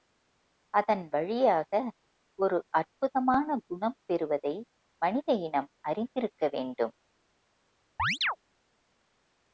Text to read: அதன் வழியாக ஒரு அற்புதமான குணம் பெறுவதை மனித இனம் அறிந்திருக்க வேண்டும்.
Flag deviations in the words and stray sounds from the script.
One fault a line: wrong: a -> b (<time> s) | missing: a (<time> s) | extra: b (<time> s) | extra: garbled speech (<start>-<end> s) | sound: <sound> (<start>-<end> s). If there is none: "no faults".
sound: chirp (8.0-8.4 s)